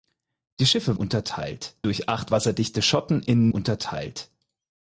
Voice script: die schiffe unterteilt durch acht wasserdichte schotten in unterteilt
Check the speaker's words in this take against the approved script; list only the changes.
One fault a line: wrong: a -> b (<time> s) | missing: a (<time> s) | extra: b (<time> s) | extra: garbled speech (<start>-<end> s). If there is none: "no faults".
no faults